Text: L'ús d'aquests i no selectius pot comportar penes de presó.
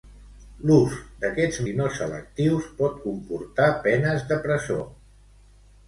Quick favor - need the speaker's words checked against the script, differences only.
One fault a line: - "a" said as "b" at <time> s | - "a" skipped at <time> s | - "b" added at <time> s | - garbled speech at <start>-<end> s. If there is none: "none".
none